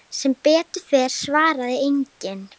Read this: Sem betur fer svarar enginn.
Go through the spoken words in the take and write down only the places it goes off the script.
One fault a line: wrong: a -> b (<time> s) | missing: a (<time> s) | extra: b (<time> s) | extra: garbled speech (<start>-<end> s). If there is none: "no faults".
no faults